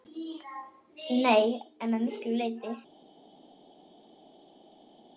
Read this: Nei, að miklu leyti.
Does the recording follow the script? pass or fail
fail